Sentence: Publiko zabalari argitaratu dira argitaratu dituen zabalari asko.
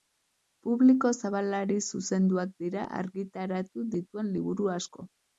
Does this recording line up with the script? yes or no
no